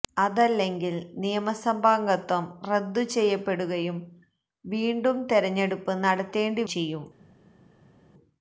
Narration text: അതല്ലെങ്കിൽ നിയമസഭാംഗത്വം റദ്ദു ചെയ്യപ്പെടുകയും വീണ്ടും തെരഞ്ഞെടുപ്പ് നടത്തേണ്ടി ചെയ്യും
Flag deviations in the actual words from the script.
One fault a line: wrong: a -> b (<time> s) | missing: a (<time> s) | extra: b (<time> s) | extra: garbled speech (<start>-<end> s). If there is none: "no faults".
no faults